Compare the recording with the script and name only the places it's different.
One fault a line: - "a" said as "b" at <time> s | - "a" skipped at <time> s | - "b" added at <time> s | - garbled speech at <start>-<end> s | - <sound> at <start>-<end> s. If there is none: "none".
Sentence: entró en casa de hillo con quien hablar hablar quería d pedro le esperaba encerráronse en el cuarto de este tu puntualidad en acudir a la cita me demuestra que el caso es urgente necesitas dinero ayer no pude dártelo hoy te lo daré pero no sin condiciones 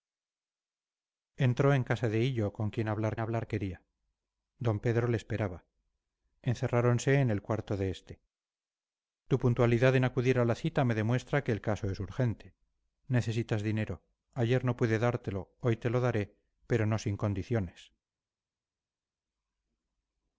none